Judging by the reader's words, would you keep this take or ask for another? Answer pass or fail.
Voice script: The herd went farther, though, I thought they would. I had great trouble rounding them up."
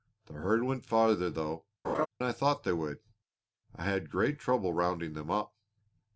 pass